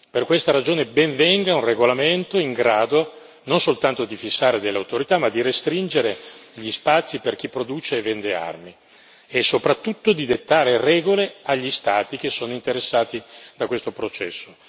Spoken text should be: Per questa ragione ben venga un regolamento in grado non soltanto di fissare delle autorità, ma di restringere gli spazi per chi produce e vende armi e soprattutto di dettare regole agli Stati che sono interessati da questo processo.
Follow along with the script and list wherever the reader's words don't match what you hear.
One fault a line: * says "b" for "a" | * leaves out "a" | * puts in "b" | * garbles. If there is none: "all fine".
all fine